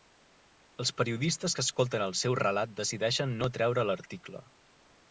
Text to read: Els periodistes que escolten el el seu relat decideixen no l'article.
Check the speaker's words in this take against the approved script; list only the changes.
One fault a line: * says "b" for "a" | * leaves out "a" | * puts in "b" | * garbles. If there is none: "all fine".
* leaves out "el"
* puts in "treure"